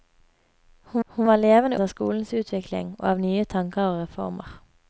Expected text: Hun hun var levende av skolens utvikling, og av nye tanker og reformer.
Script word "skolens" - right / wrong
right